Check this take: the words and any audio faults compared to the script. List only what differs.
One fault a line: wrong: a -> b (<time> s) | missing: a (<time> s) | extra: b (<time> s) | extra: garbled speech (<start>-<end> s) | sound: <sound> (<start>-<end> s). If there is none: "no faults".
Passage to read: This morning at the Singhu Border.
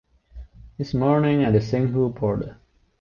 no faults